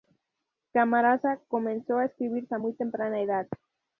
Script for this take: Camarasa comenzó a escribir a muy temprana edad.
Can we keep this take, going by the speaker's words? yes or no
yes